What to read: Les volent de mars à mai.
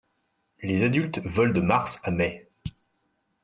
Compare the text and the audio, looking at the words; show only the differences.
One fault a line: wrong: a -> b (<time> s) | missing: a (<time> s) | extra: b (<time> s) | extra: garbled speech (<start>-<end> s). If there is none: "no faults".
extra: adultes (0.8 s)